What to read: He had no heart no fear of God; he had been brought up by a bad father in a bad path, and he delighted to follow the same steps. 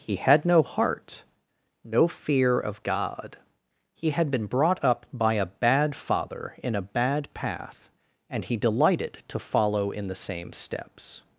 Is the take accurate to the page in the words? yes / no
no